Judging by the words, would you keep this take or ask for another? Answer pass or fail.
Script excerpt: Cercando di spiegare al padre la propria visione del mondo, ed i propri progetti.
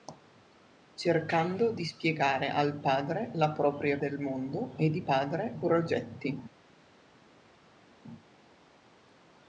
fail